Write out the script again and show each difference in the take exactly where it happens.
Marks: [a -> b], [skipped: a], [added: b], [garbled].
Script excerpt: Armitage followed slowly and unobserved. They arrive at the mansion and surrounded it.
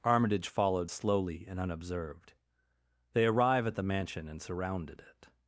Armitage followed slowly and unobserved. They arrive at the mansion and surrounded it.